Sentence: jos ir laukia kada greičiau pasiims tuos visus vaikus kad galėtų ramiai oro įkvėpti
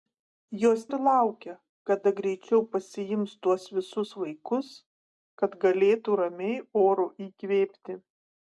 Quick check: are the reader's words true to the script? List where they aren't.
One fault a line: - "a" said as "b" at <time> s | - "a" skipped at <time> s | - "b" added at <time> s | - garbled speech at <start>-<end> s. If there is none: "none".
none